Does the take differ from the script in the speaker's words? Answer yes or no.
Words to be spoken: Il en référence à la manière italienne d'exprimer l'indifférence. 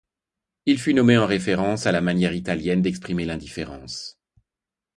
yes